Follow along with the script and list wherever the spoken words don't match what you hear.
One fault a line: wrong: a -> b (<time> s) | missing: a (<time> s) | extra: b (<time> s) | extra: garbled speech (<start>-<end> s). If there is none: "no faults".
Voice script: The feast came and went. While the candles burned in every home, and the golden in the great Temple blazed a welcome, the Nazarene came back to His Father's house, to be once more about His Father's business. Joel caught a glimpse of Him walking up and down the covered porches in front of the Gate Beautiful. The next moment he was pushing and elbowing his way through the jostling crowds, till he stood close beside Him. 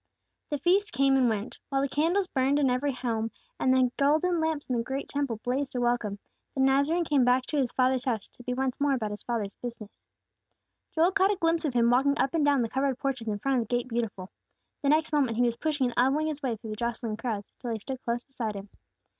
extra: lamps (4.4 s)